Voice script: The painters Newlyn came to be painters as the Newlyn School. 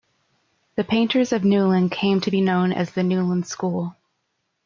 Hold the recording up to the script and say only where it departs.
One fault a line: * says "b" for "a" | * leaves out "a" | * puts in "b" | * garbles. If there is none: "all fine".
* puts in "of"
* says "known" for "painters"